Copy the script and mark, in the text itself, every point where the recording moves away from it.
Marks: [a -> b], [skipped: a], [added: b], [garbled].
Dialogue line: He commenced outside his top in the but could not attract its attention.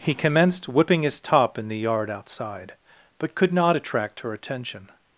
He commenced [outside -> whipping] his top in the [added: yard outside] but could not attract [its -> her] attention.